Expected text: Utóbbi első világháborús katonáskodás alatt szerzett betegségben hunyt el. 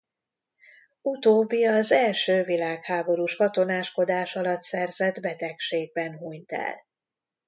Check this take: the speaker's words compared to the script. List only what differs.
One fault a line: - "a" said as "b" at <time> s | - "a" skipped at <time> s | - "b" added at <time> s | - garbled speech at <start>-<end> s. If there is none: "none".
- "az" added at 1.6 s